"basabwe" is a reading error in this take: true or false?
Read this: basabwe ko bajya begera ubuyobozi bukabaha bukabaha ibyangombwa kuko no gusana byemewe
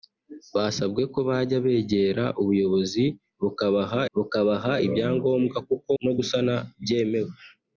false